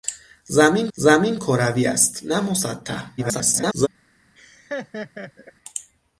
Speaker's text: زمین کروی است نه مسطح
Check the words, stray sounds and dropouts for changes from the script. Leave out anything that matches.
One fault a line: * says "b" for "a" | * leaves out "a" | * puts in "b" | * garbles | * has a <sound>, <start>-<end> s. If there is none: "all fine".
* puts in "زمین"
* garbles
* has a laugh, 4.4-5.5 s